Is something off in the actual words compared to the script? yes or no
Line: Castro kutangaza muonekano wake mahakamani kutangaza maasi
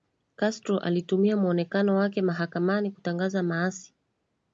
yes